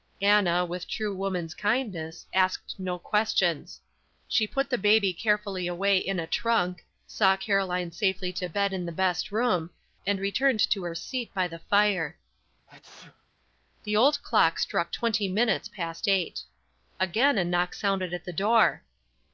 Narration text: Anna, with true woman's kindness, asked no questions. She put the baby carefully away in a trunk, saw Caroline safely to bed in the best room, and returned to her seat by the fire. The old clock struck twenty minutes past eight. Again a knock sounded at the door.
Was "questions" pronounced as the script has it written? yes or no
yes